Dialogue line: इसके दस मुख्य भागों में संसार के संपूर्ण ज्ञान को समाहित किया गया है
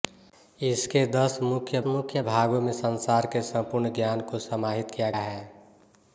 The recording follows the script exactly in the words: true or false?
false